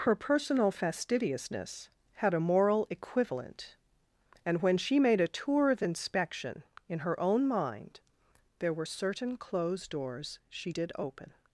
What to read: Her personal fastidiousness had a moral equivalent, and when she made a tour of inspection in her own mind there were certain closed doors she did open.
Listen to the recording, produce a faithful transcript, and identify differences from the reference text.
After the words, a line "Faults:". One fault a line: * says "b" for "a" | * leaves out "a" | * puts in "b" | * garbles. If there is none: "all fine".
Her personal fastidiousness had a moral equivalent, and when she made a tour of inspection in her own mind there were certain closed doors she did open.
Faults:
all fine